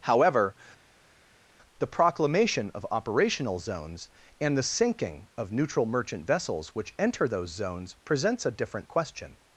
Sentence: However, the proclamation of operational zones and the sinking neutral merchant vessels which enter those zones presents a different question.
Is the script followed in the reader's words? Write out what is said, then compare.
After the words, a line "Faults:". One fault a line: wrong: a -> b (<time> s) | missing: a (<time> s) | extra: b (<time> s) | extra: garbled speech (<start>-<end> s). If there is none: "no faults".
However, the proclamation of operational zones and the sinking of neutral merchant vessels which enter those zones presents a different question.
Faults:
extra: of (5.4 s)